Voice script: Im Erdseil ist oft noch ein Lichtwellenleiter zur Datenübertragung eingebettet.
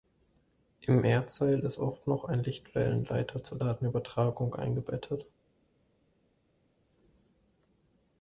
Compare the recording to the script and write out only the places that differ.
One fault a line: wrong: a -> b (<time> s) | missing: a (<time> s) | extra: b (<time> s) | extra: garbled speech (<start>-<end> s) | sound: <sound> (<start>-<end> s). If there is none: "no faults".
no faults